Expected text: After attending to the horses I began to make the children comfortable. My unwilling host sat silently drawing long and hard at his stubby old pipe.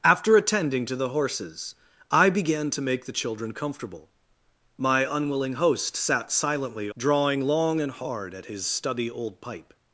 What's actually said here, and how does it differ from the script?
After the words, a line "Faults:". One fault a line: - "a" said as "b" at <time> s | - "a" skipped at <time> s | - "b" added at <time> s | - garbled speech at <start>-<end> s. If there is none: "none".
After attending to the horses I began to make the children comfortable. My unwilling host sat silently drawing long and hard at his stubby old pipe.
Faults:
none